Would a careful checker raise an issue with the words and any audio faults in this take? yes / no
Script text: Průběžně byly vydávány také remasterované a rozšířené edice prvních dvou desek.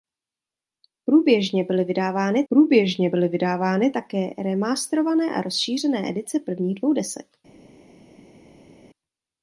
yes